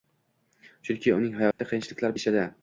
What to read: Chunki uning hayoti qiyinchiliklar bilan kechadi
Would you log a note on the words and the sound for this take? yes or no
yes